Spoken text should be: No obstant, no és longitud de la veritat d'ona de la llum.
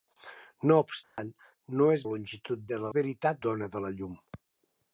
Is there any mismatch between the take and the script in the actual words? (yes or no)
no